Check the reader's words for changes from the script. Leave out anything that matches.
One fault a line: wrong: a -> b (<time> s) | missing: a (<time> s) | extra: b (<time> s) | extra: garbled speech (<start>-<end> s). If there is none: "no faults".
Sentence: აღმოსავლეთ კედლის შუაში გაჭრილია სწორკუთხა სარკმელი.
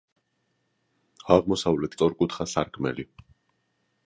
missing: კედლის შუაში გაჭრილია (2.0 s)